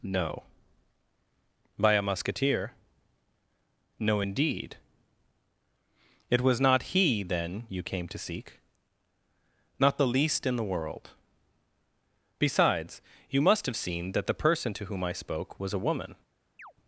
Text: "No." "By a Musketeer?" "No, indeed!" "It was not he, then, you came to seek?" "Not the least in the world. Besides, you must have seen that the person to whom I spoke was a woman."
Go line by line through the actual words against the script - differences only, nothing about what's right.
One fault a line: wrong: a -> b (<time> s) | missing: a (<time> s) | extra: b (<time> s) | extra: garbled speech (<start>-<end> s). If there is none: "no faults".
no faults